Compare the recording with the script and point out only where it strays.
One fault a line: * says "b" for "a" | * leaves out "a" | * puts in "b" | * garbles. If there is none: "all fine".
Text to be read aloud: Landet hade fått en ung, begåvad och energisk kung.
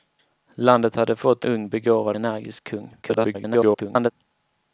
* leaves out "en"
* leaves out "och"
* garbles